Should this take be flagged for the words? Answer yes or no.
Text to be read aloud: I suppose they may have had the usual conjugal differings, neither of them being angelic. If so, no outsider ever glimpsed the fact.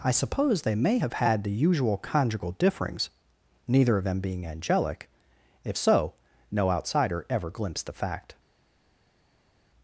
no